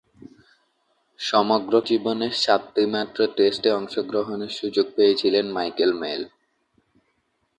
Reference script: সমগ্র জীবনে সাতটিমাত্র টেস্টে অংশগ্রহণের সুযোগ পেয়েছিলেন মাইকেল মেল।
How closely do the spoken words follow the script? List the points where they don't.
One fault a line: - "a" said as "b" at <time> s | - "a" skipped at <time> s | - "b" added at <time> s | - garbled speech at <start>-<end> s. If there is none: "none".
none